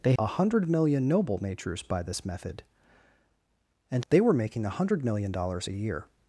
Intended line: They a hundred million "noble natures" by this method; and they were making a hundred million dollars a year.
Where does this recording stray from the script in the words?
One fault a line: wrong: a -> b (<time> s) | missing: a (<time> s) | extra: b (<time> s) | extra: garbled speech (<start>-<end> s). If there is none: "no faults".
no faults